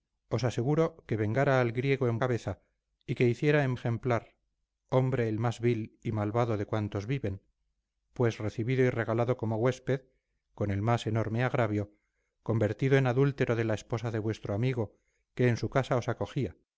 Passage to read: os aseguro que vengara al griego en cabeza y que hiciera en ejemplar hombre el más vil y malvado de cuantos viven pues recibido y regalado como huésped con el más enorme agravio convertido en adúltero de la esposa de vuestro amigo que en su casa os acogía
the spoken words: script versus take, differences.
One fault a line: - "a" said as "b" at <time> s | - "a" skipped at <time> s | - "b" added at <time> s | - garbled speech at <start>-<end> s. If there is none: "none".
none